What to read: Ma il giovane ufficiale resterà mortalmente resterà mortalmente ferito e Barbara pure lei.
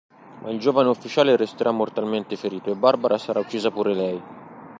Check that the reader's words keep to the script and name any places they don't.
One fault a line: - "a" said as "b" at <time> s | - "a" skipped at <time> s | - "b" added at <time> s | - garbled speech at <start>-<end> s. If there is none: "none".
- "resterà mortalmente" skipped at 2.4 s
- "sarà uccisa" added at 3.2 s